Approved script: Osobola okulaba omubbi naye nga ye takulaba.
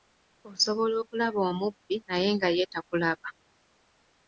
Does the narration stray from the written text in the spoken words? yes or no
no